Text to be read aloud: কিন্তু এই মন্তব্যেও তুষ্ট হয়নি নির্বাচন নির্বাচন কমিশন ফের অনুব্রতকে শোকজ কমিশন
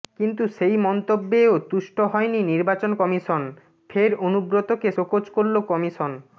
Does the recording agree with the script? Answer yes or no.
no